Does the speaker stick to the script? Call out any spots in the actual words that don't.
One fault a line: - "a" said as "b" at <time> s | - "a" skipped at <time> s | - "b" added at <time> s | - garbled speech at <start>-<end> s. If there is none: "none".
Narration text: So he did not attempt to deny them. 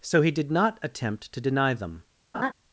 none